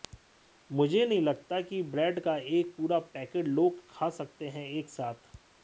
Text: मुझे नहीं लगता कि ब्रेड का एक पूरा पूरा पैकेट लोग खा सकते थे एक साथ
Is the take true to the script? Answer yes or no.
no